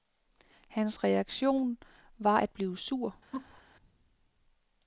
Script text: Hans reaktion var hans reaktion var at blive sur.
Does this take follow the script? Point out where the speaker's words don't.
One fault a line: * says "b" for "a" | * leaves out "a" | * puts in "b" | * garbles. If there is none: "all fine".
* leaves out "hans reaktion var"